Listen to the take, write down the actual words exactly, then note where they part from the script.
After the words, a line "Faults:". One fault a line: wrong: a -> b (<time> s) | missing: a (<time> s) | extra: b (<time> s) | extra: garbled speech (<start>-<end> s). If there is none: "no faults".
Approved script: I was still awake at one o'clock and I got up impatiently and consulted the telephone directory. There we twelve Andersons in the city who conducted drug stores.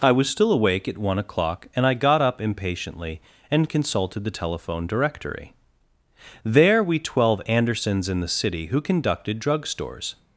I was still awake at one o'clock and I got up impatiently and consulted the telephone directory. There we twelve Andersons in the city who conducted drug stores.
Faults:
no faults